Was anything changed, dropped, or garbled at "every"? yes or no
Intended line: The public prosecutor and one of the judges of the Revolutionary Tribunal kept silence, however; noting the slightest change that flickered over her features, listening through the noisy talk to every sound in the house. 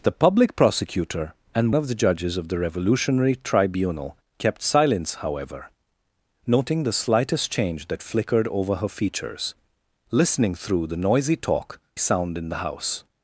yes